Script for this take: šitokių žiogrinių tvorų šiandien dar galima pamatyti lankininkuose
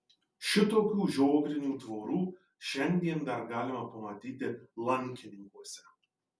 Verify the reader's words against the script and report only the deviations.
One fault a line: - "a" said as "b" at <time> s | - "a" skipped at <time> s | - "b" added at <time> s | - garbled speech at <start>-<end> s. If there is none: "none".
none